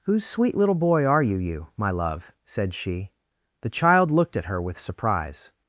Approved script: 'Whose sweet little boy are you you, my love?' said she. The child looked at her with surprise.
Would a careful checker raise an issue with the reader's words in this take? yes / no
no